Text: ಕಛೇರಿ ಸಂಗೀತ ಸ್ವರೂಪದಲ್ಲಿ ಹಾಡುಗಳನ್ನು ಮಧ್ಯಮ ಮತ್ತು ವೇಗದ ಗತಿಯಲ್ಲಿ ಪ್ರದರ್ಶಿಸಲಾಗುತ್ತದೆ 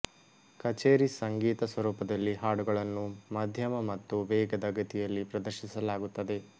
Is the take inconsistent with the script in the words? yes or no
no